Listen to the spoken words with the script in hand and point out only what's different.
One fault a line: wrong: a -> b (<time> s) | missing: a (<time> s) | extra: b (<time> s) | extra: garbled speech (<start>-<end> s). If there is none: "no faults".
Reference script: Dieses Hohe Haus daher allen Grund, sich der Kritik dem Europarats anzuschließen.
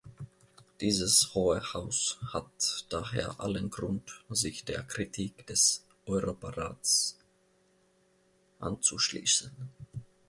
extra: hat (2.3 s)
wrong: dem -> des (5.5 s)